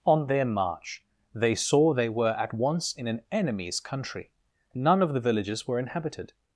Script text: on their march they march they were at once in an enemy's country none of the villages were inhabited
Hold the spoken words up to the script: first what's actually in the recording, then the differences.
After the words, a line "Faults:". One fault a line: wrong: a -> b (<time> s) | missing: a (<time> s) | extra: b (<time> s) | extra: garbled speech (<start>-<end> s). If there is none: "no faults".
on their march they saw they were at once in an enemy's country none of the villages were inhabited
Faults:
wrong: march -> saw (1.5 s)